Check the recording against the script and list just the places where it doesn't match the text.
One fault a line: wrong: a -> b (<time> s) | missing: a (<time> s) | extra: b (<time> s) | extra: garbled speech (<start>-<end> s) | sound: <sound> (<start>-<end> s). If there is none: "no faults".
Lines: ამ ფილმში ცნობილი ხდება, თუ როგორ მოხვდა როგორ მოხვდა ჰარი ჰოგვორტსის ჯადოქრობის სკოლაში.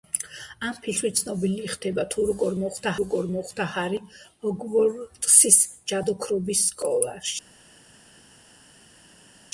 no faults